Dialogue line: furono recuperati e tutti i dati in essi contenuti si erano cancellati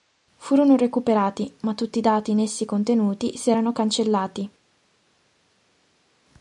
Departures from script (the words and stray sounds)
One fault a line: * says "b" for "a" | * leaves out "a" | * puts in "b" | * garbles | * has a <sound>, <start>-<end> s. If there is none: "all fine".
* says "ma" for "e"